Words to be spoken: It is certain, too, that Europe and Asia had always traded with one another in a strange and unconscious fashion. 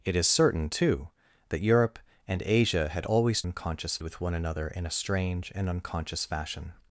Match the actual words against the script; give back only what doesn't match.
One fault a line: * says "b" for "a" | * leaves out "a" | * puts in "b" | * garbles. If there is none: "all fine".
* says "unconscious" for "traded"